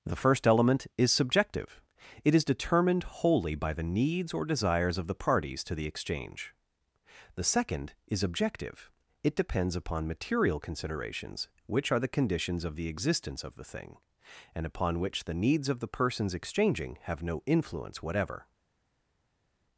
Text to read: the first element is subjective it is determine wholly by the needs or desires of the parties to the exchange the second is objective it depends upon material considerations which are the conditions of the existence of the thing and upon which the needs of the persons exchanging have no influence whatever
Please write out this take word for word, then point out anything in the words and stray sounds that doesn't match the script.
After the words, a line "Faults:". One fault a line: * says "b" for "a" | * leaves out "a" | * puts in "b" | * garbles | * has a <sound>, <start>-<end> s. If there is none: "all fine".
the first element is subjective it is determined wholly by the needs or desires of the parties to the exchange the second is objective it depends upon material considerations which are the conditions of the existence of the thing and upon which the needs of the persons exchanging have no influence whatever
Faults:
* says "determined" for "determine"